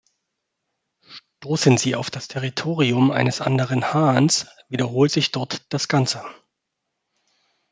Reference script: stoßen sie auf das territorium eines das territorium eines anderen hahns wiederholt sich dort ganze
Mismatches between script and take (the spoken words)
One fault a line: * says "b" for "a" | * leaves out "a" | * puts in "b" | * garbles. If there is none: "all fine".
* leaves out "das territorium eines"
* puts in "das"